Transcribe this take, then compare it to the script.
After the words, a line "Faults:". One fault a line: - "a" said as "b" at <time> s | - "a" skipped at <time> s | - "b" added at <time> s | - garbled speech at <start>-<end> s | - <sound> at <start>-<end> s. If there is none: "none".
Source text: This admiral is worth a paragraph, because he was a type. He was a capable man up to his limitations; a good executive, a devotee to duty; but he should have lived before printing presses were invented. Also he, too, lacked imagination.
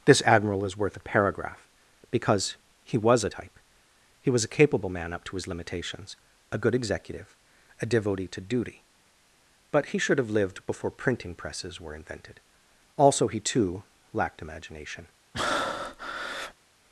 This admiral is worth a paragraph, because he was a type. He was a capable man up to his limitations; a good executive, a devotee to duty; but he should have lived before printing presses were invented. Also he, too, lacked imagination.
Faults:
- breath at 15.3-16.5 s